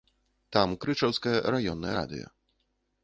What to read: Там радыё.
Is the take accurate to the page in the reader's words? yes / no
no